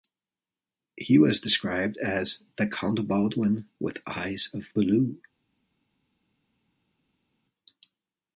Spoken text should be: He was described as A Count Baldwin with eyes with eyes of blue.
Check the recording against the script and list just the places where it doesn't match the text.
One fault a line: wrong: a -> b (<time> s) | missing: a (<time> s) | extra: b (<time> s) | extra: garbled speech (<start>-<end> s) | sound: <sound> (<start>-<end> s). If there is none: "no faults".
wrong: A -> The (2.6 s)
missing: with eyes (4.5 s)